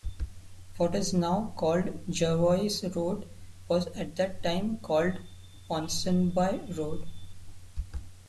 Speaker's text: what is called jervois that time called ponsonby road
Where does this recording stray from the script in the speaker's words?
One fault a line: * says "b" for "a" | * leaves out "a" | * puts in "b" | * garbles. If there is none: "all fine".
* puts in "now"
* puts in "road was at"